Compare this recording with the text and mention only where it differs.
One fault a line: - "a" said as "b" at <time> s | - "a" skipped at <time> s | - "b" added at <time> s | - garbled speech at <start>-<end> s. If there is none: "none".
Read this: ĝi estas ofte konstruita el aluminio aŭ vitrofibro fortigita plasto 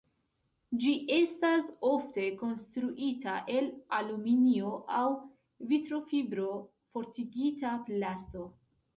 none